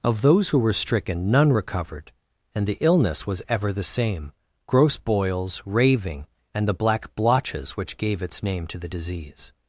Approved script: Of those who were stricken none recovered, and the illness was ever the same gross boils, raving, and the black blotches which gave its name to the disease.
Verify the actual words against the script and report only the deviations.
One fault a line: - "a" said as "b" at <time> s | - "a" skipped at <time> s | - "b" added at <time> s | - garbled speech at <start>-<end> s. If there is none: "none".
none